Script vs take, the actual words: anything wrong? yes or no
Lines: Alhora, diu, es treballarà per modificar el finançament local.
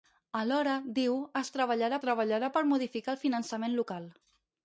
yes